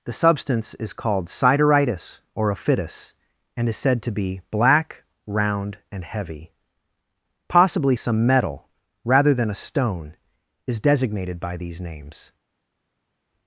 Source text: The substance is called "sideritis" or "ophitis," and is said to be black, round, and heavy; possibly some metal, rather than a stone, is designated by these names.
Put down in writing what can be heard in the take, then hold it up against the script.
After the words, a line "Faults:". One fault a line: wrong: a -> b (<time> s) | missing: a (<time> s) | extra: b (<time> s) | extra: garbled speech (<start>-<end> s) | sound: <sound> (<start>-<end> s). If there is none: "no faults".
The substance is called "sideritis" or "ophitis," and is said to be black, round, and heavy; possibly some metal, rather than a stone, is designated by these names.
Faults:
no faults